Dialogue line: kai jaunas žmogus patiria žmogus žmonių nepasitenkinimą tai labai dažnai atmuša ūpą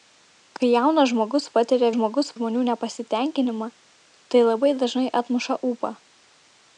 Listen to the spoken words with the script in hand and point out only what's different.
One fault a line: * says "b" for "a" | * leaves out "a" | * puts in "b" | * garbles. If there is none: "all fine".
all fine